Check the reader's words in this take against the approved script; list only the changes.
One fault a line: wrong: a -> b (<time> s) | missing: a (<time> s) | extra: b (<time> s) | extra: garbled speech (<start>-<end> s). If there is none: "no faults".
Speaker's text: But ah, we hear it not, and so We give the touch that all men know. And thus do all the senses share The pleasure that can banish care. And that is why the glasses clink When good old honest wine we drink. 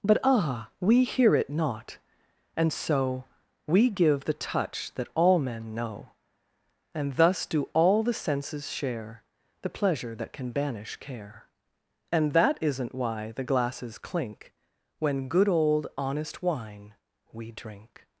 wrong: is -> isn't (12.6 s)